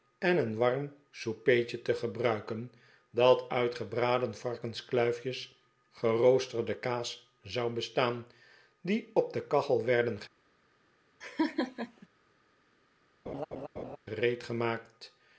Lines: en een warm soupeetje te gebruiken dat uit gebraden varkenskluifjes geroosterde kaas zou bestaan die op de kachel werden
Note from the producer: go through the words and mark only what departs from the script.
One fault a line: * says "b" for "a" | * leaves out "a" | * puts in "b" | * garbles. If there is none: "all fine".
all fine